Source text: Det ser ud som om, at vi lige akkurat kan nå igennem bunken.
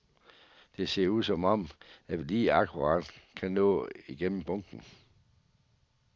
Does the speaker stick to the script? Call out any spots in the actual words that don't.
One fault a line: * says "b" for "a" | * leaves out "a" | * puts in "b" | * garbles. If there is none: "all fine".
all fine